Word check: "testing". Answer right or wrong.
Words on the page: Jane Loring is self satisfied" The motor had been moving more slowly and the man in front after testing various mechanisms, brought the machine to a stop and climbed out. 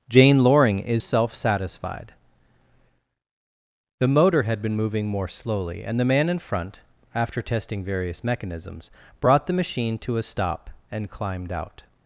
right